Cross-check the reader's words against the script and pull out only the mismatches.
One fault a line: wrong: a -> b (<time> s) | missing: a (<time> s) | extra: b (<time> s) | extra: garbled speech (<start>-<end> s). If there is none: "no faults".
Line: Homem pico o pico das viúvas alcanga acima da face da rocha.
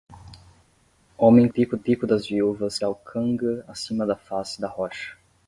no faults